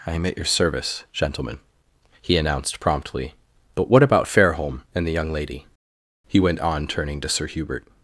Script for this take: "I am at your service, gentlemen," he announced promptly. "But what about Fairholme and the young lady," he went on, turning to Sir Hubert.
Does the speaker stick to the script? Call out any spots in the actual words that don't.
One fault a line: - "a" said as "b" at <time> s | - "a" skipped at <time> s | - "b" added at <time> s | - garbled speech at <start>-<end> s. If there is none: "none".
none